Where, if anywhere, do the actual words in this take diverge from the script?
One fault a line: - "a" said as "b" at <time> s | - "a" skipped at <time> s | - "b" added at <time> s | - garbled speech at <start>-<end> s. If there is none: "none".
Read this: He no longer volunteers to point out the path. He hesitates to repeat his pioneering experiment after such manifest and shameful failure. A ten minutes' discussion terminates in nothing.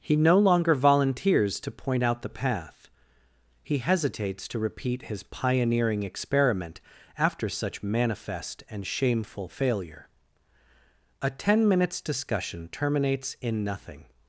none